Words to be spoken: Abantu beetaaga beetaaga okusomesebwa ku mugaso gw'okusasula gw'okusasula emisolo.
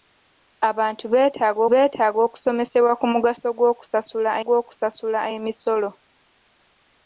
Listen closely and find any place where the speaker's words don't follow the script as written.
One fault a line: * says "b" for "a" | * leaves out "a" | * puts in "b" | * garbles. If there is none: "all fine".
all fine